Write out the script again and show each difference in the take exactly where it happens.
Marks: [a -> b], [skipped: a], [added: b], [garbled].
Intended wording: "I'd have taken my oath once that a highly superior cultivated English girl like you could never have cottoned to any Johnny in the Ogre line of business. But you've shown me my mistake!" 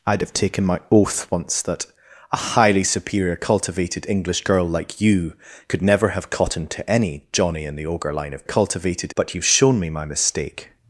"I'd have taken my oath once that a highly superior cultivated English girl like you could never have cottoned to any Johnny in the Ogre line of [business. -> cultivated] But you've shown me my mistake!"